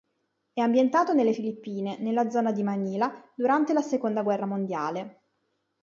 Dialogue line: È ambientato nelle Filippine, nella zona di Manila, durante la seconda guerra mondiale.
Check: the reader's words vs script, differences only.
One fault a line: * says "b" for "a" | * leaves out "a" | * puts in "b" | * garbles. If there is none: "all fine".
all fine